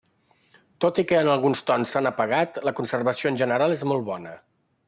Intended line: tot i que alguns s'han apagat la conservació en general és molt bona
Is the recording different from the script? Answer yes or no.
yes